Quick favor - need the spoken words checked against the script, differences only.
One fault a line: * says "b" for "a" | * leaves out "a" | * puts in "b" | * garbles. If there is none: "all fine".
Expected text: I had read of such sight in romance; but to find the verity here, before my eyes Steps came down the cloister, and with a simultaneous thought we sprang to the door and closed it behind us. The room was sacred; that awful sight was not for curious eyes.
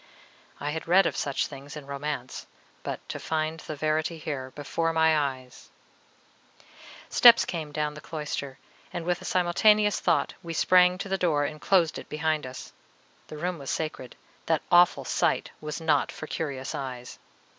* says "things" for "sight"